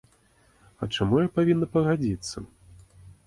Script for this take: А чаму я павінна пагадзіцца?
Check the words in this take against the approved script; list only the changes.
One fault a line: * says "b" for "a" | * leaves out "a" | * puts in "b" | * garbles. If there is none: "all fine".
all fine